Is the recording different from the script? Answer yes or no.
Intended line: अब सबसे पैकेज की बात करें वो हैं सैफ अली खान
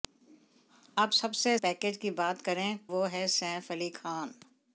no